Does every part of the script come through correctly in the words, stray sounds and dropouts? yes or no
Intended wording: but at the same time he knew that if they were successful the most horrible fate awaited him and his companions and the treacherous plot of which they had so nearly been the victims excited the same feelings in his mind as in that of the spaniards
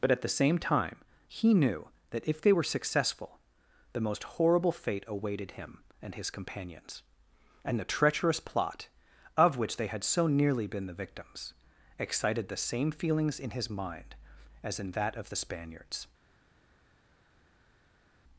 yes